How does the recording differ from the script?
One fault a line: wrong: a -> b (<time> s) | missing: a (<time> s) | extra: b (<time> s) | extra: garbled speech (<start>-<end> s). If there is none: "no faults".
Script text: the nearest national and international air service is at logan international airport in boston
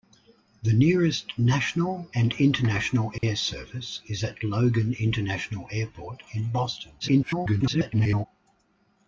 extra: garbled speech (7.0-8.3 s)